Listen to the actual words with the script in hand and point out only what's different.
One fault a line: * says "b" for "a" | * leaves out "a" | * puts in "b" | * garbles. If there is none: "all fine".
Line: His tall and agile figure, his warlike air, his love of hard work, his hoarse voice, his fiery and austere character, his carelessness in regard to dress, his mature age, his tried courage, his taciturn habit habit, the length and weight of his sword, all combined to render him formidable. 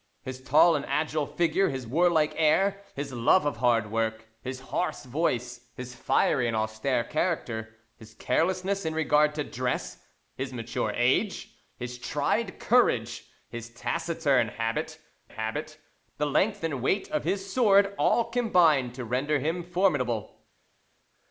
all fine